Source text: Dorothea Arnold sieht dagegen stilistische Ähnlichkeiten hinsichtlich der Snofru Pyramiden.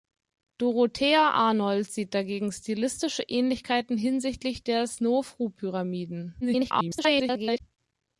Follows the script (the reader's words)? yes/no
no